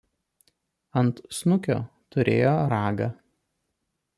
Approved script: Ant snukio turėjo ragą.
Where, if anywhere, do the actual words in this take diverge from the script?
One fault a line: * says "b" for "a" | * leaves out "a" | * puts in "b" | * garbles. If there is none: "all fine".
all fine